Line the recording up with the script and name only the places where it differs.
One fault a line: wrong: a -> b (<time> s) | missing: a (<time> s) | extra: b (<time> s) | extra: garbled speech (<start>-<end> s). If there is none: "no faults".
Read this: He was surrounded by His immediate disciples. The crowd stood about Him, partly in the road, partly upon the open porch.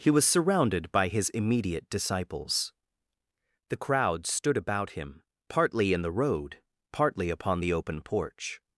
no faults